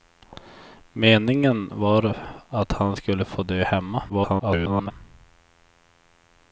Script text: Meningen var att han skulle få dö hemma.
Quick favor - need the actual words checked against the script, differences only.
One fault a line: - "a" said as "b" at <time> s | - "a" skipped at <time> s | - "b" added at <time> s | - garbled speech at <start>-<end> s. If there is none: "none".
- garbled speech at 4.1-4.9 s